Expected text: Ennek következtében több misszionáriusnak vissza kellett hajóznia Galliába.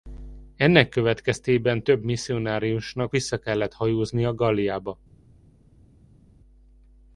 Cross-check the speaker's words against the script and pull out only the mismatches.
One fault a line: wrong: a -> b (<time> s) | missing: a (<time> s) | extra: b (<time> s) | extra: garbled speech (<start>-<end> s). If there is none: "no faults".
no faults